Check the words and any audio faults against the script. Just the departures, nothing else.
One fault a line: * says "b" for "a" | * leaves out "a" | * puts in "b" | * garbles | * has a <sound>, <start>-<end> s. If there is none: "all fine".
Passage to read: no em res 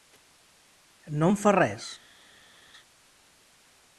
* puts in "fa"